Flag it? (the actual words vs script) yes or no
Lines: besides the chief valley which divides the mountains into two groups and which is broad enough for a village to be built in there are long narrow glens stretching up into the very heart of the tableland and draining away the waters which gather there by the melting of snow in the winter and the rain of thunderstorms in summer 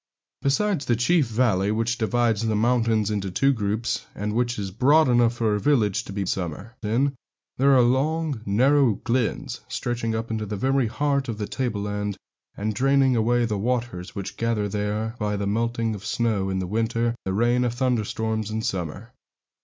yes